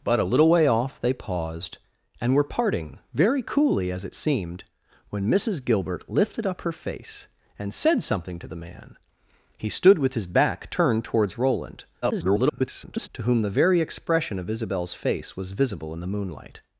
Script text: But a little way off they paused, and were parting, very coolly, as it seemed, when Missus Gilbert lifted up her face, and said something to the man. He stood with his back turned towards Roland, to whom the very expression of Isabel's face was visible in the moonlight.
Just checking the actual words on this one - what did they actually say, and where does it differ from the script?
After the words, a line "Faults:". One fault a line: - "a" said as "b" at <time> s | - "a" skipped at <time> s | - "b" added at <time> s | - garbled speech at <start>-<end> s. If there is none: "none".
But a little way off they paused, and were parting, very coolly, as it seemed, when Missus Gilbert lifted up her face, and said something to the man. He stood with his back turned towards Roland, [garbled] to whom the very expression of Isabel's face was visible in the moonlight.
Faults:
- garbled speech at 12.0-13.1 s